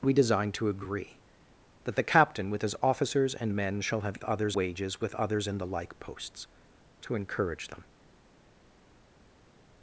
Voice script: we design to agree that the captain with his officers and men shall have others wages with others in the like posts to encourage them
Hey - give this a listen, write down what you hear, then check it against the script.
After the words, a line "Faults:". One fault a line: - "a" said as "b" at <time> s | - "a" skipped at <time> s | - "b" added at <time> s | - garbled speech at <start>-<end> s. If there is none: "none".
we design to agree that the captain with his officers and men shall have others wages with others in the like posts to encourage them
Faults:
none